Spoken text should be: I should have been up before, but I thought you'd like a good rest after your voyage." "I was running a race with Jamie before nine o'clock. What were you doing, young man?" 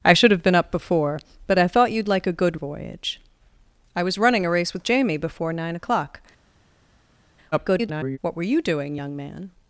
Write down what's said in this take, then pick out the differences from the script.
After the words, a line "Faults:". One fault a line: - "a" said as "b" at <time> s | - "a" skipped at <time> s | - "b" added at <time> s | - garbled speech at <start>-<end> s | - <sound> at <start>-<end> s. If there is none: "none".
I should have been up before, but I thought you'd like a good voyage." "I was running a race with Jamie before nine o'clock. [garbled] What were you doing, young man?"
Faults:
- "rest after your" skipped at 2.6 s
- garbled speech at 7.5-8.2 s